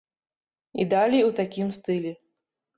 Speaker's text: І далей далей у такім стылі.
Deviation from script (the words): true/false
true